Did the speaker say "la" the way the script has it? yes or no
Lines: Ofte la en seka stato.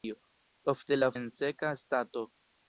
yes